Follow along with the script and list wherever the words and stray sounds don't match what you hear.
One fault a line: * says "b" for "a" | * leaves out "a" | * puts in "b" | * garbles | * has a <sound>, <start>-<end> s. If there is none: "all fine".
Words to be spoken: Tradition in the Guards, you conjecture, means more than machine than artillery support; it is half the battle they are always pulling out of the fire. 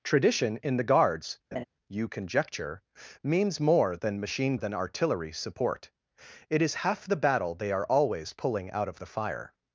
* has a laugh, 1.5-1.6 s